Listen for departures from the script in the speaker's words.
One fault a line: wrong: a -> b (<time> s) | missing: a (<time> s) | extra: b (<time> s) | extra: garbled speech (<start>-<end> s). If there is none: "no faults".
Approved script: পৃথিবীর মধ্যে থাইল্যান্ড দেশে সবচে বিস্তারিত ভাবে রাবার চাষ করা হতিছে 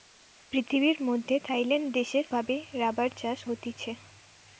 missing: সবচে বিস্তারিত (2.2 s)
missing: করা (3.4 s)